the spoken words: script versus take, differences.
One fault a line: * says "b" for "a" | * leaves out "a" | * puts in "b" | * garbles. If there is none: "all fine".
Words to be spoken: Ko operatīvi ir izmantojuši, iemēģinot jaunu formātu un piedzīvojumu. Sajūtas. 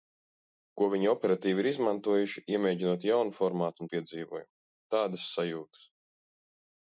* puts in "viņi"
* puts in "Tādas"